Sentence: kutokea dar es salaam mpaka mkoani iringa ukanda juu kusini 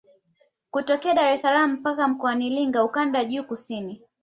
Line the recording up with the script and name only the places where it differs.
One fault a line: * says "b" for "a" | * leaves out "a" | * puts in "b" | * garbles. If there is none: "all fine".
all fine